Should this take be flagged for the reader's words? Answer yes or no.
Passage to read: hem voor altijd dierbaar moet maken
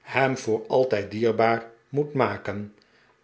no